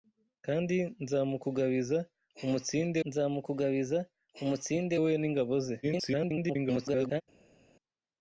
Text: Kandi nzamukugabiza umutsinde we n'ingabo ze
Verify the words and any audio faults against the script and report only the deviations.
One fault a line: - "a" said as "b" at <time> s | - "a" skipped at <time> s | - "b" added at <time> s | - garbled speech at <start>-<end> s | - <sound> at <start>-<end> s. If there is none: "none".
- "nzamukugabiza umutsinde" added at 3.1 s
- garbled speech at 5.8-7.2 s